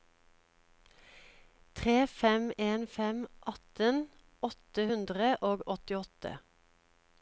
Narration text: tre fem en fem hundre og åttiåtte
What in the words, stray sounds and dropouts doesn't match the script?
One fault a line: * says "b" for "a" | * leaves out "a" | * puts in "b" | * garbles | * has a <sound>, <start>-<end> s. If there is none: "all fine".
* puts in "atten åtte"